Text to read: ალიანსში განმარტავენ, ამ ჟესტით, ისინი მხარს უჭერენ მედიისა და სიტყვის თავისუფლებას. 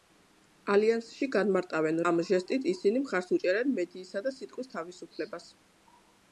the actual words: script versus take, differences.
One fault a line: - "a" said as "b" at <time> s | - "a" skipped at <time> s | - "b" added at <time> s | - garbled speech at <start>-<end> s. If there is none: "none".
none